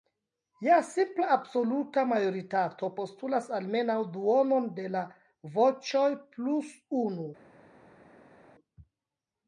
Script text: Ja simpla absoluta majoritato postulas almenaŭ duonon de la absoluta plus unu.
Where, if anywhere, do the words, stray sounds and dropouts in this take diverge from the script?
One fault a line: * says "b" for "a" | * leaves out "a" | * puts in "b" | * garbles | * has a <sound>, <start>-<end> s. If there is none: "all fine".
* says "voĉoj" for "absoluta"